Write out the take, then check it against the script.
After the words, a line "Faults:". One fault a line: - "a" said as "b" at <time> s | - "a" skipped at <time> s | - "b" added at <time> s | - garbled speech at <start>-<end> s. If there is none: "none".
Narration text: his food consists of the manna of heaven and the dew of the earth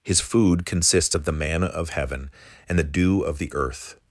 his food consists of the manna of heaven and the dew of the earth
Faults:
none